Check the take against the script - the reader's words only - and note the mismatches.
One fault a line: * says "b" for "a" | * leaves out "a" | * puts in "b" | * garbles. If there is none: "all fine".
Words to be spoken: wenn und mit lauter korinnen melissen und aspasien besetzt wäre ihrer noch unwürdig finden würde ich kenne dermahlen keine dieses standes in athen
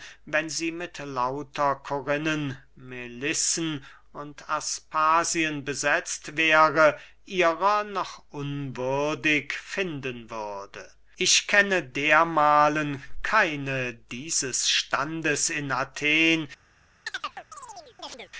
* says "sie" for "und"